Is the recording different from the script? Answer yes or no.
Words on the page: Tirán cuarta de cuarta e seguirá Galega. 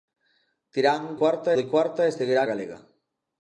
no